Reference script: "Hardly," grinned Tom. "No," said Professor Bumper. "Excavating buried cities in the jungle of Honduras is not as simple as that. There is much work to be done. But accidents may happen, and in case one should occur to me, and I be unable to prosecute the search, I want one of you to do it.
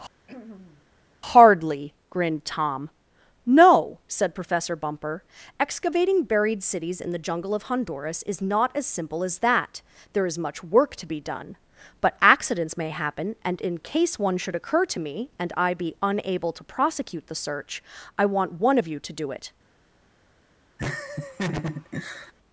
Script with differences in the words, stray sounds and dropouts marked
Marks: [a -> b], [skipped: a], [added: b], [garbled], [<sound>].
[throat clearing] "Hardly," grinned Tom. "No," said Professor Bumper. "Excavating buried cities in the jungle of Honduras is not as simple as that. There is much work to be done. But accidents may happen, and in case one should occur to me, and I be unable to prosecute the search, I want one of you to do it. [laugh]